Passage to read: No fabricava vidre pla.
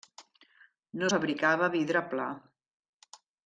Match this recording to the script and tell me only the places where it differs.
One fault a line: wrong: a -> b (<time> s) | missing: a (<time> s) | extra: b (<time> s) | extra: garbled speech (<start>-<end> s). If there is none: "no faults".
no faults